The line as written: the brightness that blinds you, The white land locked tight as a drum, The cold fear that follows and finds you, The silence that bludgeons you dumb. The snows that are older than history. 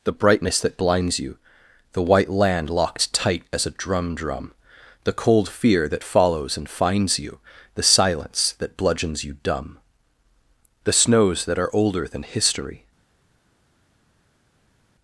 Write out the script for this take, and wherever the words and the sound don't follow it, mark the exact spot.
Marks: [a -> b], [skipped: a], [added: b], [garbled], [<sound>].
the brightness that blinds you, The white land locked tight as a drum, [added: drum] The cold fear that follows and finds you, The silence that bludgeons you dumb. The snows that are older than history.